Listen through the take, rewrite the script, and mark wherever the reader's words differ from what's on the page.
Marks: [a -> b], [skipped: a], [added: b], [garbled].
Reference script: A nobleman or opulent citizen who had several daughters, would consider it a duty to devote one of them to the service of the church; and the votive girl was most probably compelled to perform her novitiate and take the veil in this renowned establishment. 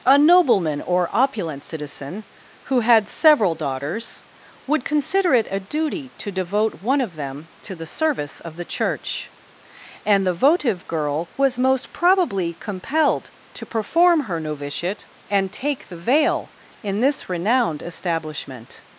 A nobleman or opulent citizen who had several daughters, would consider it a duty to devote one of them to the service of the church; and the votive girl was most probably compelled to perform her novitiate and take the veil in this renowned establishment.